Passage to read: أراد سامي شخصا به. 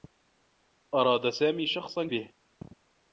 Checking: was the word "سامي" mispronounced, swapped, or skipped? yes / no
no